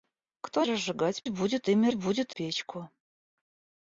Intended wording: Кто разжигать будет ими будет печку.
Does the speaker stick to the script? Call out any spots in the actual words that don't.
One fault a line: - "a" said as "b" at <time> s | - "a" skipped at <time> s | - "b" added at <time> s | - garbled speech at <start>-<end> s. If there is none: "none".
none